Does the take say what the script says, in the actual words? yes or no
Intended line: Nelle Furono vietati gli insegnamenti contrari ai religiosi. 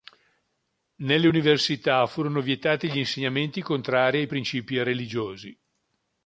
no